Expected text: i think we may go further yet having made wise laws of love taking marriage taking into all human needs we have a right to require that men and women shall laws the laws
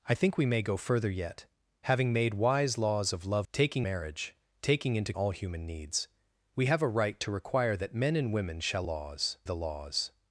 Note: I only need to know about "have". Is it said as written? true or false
true